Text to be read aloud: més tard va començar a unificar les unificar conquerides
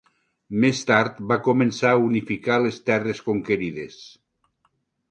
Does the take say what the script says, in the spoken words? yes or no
no